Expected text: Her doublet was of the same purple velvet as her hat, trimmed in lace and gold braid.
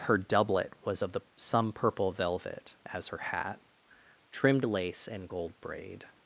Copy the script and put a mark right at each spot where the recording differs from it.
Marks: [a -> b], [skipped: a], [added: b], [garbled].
Her doublet was of the [same -> some] purple velvet as her hat, trimmed [skipped: in] lace and gold braid.